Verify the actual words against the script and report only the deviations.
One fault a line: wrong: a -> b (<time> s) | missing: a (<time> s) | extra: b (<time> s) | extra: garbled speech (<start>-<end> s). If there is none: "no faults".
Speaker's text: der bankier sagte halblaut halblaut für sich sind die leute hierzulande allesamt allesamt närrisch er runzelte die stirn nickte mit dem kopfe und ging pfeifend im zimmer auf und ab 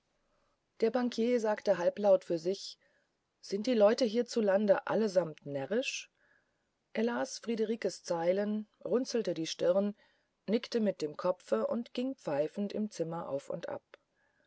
missing: halblaut (2.2 s)
missing: allesamt (5.4 s)
extra: las friederikes zeilen (7.0 s)